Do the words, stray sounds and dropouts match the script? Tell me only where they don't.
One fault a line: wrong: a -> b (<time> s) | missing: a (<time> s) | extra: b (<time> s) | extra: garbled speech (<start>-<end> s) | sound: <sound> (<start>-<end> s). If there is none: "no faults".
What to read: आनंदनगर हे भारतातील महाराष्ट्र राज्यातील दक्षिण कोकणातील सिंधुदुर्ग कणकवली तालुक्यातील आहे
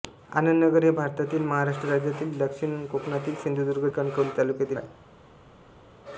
no faults